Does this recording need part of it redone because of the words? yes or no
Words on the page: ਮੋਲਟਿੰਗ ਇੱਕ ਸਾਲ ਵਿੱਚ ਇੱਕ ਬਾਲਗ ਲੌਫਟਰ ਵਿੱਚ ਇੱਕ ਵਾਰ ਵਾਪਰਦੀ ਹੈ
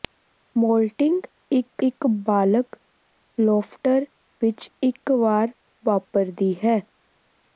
yes